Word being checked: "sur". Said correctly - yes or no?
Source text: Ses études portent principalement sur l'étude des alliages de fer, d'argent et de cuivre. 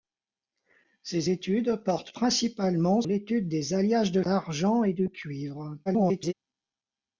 no